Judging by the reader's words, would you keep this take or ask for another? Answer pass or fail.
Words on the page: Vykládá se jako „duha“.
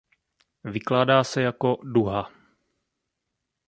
pass